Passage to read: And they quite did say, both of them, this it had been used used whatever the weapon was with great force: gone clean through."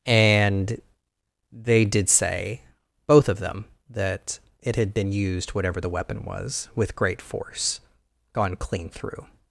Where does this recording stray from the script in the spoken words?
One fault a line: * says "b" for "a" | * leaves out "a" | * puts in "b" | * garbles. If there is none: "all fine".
* leaves out "quite"
* says "that" for "this"
* leaves out "used"